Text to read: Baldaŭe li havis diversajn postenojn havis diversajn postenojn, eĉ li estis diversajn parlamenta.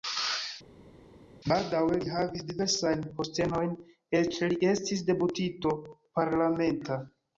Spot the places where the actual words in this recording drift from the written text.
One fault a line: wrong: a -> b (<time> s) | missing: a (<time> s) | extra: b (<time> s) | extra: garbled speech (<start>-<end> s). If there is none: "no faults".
missing: havis diversajn postenojn (3.8 s)
wrong: diversajn -> deputito (5.1 s)